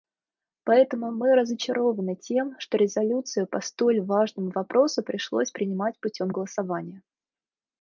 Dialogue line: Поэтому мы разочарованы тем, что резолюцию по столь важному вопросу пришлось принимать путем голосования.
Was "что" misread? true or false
false